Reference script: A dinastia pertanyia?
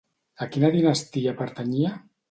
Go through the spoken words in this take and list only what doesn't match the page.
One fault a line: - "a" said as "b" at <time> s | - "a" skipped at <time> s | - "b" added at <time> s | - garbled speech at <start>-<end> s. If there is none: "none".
- "quina" added at 0.5 s